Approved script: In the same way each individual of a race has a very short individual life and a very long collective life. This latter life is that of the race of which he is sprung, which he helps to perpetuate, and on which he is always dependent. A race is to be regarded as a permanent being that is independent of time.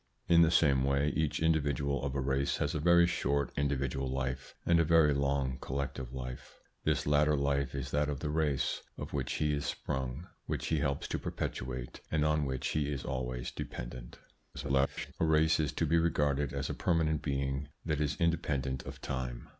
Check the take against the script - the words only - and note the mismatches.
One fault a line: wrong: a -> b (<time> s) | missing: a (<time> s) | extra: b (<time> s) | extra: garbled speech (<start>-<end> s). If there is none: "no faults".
extra: garbled speech (14.5-15.1 s)